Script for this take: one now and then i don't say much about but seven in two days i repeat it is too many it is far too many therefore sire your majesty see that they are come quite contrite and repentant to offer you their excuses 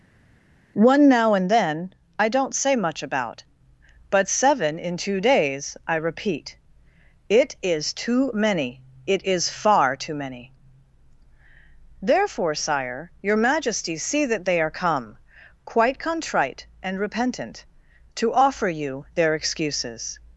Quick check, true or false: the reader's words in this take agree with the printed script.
true